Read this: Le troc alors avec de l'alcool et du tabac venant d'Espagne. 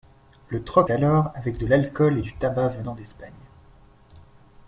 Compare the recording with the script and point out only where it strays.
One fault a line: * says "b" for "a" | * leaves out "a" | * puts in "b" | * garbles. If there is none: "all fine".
all fine